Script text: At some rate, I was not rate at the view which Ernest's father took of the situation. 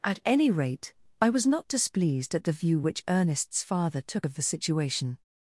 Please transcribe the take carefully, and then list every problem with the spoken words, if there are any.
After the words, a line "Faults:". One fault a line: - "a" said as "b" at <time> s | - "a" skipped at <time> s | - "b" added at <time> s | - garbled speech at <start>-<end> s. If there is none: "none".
At any rate, I was not displeased at the view which Ernest's father took of the situation.
Faults:
- "some" said as "any" at 0.2 s
- "rate" said as "displeased" at 1.7 s